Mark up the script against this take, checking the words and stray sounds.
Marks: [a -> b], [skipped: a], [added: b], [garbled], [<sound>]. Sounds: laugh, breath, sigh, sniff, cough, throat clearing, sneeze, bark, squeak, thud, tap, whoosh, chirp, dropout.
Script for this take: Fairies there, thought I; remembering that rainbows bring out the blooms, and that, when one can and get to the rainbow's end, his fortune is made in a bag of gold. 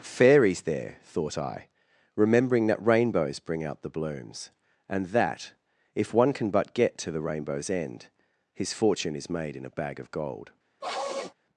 Fairies there, thought I; remembering that rainbows bring out the blooms, and that, [when -> if] one can [and -> but] get to the rainbow's end, his fortune is made in a bag of gold. [sniff]